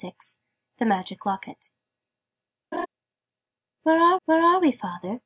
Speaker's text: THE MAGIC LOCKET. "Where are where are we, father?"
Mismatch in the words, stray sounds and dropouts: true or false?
true